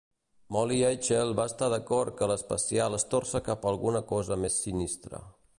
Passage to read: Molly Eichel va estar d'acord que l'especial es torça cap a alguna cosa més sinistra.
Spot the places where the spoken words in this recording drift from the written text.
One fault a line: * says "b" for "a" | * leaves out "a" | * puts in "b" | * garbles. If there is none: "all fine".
all fine